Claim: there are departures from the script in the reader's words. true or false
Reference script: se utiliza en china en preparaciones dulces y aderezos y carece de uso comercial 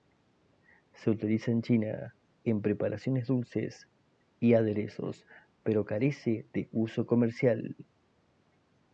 true